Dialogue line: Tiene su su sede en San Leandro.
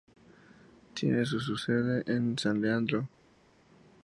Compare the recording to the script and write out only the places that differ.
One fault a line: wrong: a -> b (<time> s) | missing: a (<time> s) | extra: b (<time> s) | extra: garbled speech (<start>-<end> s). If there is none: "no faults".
no faults